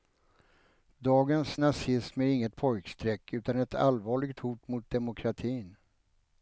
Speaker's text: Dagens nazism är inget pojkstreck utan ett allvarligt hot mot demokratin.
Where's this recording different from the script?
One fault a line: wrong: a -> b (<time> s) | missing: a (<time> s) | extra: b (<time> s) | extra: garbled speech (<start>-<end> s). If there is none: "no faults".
no faults